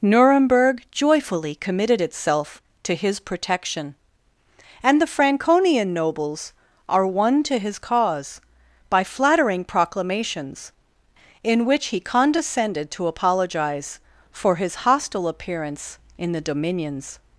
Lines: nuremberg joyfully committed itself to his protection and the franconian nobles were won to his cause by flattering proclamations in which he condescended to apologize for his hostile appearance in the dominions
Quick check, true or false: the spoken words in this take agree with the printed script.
false